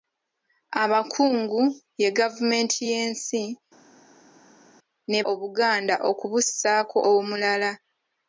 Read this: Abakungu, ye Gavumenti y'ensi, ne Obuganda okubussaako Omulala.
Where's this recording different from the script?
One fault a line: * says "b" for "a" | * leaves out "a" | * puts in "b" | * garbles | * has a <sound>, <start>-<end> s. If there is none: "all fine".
all fine